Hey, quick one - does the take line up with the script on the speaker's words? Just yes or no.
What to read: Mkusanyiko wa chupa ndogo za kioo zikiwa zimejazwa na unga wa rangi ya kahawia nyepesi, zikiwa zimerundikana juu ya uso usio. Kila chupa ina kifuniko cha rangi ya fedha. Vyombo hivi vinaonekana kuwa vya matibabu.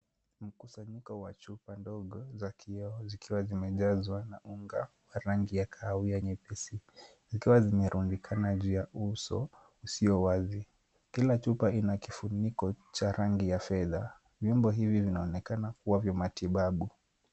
no